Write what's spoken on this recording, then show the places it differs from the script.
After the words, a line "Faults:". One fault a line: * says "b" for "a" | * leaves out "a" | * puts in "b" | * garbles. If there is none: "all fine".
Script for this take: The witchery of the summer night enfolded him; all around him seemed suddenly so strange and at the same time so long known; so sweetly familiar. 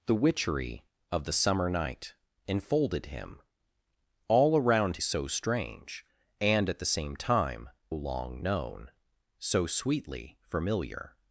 The witchery of the summer night enfolded him; all around so strange and at the same time long known; so sweetly familiar.
Faults:
* leaves out "him seemed suddenly"
* leaves out "so"